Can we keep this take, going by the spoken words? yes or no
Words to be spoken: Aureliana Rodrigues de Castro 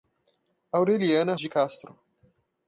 no